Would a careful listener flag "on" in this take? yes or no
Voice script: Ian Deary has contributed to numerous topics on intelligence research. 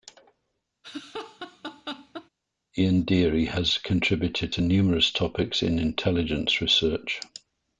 yes